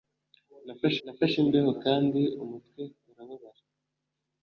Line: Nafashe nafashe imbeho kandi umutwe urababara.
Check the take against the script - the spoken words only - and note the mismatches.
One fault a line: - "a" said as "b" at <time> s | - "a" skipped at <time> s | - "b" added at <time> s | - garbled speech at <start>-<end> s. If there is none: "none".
none